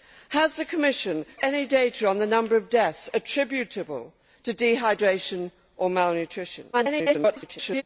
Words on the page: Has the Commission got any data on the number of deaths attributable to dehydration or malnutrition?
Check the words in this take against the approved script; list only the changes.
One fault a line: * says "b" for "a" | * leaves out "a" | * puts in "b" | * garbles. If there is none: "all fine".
* leaves out "got"
* garbles